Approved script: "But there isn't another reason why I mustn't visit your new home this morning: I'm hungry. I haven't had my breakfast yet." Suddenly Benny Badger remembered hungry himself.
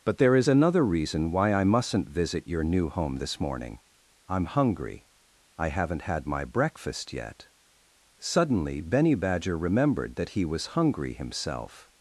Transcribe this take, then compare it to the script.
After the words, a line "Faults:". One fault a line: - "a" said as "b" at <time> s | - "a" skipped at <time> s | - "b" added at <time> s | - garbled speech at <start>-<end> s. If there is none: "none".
"But there is another reason why I mustn't visit your new home this morning: I'm hungry. I haven't had my breakfast yet." Suddenly Benny Badger remembered that he was hungry himself.
Faults:
- "isn't" said as "is" at 0.3 s
- "that he was" added at 10.2 s